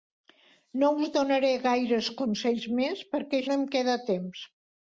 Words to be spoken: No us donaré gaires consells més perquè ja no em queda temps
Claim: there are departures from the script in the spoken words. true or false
true